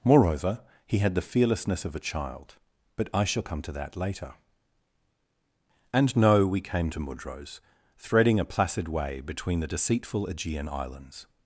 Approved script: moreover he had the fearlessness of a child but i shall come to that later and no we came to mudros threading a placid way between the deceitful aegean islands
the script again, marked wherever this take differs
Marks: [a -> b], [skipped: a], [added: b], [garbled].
moreover he had the fearlessness of a child but i shall come to that later and no we came to mudros threading a placid way between the deceitful aegean islands